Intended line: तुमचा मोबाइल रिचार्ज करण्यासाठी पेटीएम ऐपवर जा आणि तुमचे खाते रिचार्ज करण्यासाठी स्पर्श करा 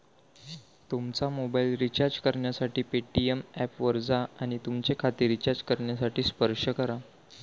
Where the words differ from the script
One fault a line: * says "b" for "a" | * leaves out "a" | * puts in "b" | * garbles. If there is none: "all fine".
all fine